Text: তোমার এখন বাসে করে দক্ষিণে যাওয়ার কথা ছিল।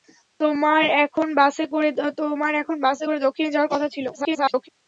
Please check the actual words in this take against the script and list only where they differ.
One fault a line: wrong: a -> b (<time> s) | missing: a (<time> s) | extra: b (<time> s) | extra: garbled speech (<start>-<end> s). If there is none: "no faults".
extra: garbled speech (4.1-4.7 s)